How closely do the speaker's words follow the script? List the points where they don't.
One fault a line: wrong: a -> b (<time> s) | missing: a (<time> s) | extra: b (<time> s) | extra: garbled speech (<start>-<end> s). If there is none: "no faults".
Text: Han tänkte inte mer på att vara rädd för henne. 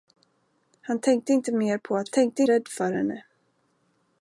wrong: vara -> tänkte (2.1 s)